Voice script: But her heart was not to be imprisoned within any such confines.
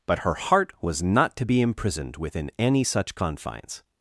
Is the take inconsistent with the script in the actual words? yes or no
no